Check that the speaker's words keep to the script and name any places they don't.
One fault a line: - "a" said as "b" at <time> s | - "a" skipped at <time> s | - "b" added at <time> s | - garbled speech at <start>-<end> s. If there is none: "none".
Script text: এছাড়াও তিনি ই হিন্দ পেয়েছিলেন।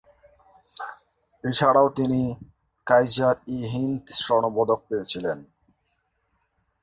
- "কাইজার" added at 2.9 s
- "স্বর্ণপদক" added at 4.2 s